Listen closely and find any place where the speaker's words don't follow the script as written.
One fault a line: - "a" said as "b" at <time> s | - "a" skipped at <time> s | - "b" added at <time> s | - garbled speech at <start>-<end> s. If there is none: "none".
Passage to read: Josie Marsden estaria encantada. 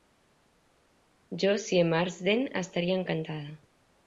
none